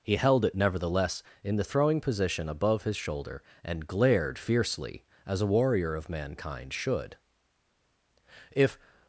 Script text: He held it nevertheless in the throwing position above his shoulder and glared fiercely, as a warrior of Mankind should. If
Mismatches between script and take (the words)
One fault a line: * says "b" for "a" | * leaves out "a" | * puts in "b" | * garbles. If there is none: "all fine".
all fine